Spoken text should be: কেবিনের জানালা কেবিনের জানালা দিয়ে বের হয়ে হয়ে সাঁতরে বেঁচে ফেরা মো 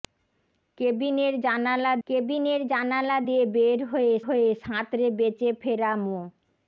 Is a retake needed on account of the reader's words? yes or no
no